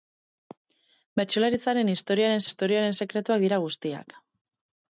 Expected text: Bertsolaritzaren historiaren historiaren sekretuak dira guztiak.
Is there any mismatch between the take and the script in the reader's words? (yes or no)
no